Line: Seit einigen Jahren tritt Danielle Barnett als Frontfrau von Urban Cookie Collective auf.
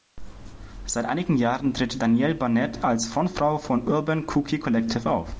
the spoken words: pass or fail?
pass